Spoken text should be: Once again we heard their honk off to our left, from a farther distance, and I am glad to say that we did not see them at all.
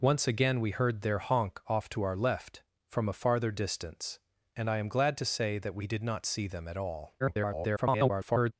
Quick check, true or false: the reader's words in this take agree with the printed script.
false